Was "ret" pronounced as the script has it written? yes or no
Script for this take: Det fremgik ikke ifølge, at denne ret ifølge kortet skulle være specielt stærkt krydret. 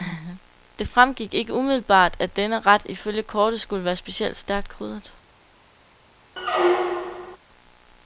yes